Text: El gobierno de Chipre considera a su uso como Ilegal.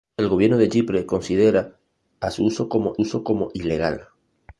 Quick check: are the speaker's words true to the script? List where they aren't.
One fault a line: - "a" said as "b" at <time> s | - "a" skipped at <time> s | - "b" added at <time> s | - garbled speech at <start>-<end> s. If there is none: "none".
- "uso como" added at 3.0 s